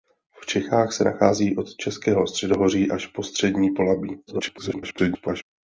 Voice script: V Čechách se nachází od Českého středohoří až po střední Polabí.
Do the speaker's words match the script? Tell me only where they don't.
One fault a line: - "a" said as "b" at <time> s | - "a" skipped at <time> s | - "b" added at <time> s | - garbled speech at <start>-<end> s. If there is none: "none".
- garbled speech at 4.3-5.4 s